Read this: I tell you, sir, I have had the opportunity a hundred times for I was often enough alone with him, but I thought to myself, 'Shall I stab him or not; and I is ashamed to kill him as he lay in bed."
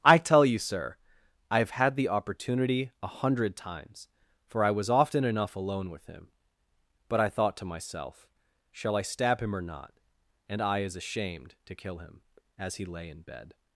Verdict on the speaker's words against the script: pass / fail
pass